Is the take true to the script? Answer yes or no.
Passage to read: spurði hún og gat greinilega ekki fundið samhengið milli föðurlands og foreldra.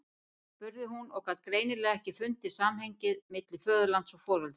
yes